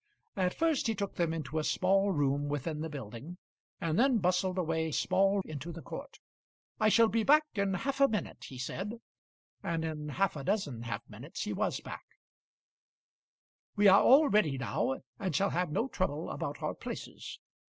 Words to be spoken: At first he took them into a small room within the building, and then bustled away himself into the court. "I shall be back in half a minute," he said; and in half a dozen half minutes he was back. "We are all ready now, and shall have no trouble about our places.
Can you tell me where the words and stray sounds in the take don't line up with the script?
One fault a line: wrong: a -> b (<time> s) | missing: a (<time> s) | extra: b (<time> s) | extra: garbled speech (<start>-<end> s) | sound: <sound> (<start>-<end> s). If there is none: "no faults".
wrong: himself -> small (4.9 s)